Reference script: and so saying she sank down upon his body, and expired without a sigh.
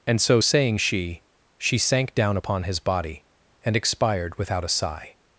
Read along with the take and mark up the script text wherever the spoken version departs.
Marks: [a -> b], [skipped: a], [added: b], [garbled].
and so saying she [added: she] sank down upon his body, and expired without a sigh.